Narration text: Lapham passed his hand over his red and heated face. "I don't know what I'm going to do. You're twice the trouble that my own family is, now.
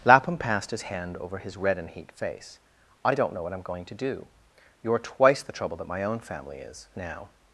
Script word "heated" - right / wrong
wrong